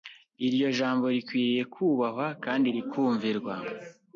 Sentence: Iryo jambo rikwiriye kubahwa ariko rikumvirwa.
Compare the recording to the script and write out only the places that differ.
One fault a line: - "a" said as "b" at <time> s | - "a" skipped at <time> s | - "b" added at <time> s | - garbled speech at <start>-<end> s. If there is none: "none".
- "ariko" said as "kandi" at 2.4 s